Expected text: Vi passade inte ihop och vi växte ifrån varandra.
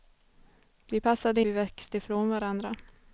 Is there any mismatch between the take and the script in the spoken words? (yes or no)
yes